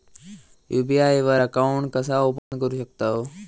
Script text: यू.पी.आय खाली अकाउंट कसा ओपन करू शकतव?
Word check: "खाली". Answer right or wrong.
wrong